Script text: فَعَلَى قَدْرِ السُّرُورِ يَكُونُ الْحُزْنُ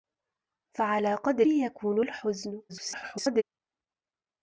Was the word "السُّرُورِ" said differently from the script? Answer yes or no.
yes